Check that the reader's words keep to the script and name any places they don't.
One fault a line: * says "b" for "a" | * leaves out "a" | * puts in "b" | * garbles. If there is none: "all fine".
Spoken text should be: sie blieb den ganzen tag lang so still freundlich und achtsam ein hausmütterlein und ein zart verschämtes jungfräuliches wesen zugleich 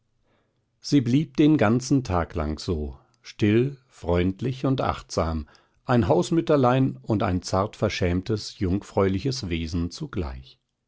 all fine